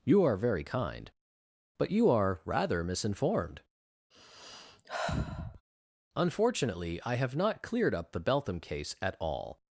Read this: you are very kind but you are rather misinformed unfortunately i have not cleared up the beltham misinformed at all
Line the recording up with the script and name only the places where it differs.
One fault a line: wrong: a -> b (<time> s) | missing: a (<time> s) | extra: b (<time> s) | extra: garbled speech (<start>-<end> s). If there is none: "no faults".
wrong: misinformed -> case (8.6 s)